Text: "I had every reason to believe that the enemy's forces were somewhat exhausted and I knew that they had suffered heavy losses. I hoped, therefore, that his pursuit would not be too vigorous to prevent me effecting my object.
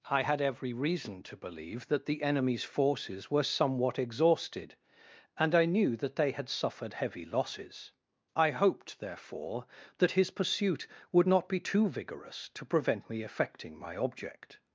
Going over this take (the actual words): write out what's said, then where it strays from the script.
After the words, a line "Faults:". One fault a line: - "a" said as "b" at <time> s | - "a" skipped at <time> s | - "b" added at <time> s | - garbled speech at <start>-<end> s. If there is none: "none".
"I had every reason to believe that the enemy's forces were somewhat exhausted and I knew that they had suffered heavy losses. I hoped, therefore, that his pursuit would not be too vigorous to prevent me effecting my object.
Faults:
none